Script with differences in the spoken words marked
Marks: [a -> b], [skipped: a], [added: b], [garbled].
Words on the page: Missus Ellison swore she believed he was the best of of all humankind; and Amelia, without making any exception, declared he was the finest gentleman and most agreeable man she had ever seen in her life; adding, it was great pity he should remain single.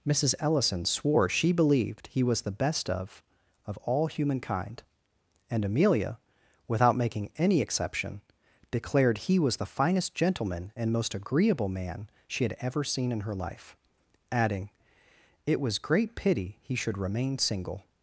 Missus Ellison swore she believed he was the best of of all humankind; and Amelia, without making any exception, declared he was the finest gentleman and most agreeable man she had ever seen in her life; adding, it was great pity he should remain single.